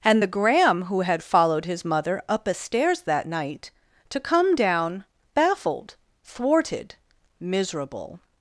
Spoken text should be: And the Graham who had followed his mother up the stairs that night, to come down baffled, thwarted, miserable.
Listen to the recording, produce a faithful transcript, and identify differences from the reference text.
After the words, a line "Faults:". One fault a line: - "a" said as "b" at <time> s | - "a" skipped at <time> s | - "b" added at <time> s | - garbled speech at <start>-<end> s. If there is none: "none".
And the Graham who had followed his mother up a stairs that night, to come down baffled, thwarted, miserable.
Faults:
- "the" said as "a" at 2.5 s